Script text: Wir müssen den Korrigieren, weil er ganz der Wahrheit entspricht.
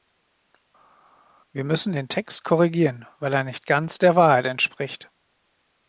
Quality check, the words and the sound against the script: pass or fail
fail